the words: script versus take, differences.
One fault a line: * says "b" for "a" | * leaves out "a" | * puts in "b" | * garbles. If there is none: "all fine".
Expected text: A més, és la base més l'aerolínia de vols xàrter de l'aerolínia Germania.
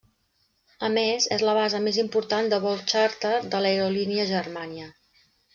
* says "important" for "l'aerolínia"